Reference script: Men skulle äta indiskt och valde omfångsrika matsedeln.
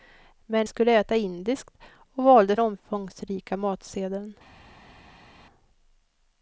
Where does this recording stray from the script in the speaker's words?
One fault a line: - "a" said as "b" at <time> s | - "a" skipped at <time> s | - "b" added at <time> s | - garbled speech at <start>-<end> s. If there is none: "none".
none